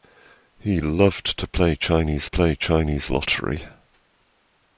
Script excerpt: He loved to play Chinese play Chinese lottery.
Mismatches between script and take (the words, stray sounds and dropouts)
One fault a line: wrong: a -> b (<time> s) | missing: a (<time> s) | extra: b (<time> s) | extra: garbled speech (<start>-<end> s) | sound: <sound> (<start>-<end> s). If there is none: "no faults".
no faults